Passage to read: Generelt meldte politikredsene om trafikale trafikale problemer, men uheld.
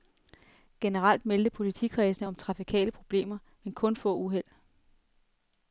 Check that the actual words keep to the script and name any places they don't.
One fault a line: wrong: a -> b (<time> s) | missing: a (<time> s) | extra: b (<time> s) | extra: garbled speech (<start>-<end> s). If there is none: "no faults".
missing: trafikale (2.9 s)
extra: kun få (3.7 s)